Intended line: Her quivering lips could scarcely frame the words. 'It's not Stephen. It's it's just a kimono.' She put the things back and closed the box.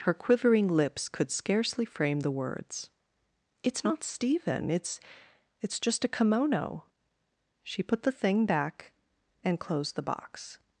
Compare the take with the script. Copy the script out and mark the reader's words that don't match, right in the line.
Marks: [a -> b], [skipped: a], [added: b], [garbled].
Her quivering lips could scarcely frame the words. 'It's not Stephen. It's it's just a kimono.' She put the [things -> thing] back and closed the box.